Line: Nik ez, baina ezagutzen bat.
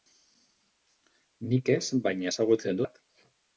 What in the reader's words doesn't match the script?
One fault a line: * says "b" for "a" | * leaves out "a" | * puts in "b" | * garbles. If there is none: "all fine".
all fine